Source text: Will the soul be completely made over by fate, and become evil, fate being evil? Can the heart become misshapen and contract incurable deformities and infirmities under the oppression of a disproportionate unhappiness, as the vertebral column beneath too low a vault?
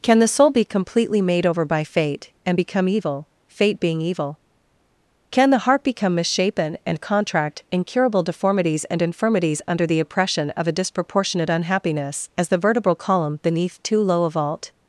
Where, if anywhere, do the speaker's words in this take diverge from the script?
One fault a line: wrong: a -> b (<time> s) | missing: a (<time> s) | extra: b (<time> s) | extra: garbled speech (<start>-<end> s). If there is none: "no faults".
wrong: Will -> Can (0.0 s)